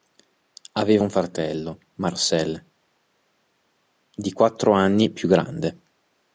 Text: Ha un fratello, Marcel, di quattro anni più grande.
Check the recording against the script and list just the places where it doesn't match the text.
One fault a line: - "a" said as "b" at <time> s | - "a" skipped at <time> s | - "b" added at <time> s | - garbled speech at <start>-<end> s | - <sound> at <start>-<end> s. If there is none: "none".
- "Ha" said as "Aveva" at 0.7 s